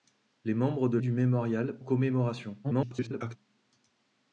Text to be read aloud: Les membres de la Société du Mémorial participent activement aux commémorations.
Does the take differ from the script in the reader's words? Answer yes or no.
yes